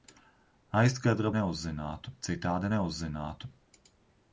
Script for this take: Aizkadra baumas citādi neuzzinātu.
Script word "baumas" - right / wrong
wrong